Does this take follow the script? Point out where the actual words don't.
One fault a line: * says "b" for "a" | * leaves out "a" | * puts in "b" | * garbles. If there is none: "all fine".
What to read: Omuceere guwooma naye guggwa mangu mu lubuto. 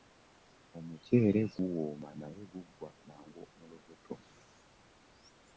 all fine